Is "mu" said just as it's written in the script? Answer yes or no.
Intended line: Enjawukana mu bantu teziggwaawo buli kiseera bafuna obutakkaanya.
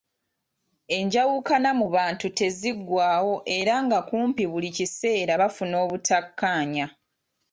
yes